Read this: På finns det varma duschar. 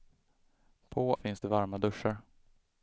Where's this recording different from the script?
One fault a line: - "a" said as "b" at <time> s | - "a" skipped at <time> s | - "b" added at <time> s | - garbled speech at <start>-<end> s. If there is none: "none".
none